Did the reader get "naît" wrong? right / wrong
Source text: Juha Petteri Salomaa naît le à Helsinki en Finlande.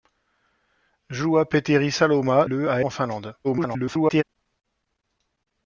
wrong